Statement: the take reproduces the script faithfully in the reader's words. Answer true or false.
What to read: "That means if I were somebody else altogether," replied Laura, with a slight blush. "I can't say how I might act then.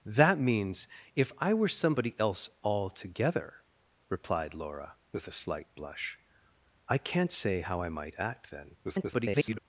false